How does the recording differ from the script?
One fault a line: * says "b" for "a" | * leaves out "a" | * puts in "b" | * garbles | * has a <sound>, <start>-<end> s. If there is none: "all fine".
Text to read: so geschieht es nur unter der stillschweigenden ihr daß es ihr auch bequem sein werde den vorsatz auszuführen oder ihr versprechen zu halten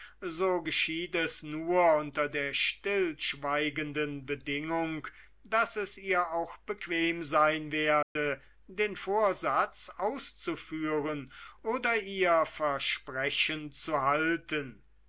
* says "bedingung" for "ihr"
* has a dropout, 8.0-8.2 s